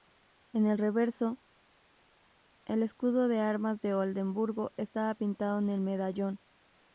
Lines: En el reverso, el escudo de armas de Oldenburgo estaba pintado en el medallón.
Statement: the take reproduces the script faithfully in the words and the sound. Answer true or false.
true